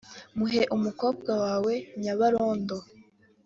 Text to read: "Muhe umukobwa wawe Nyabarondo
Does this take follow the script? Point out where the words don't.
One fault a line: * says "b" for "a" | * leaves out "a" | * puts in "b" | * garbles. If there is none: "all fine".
all fine